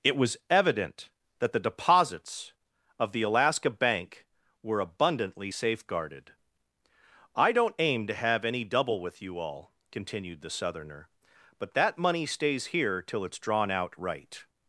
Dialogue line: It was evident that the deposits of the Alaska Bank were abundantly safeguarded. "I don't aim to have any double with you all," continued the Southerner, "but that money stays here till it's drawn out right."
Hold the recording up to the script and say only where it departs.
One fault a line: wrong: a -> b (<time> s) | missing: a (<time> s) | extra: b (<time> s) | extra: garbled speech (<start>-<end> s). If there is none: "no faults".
no faults